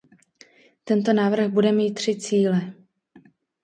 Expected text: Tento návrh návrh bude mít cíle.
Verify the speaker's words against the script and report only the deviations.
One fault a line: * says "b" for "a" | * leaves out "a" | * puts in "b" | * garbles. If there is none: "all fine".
* leaves out "návrh"
* puts in "tři"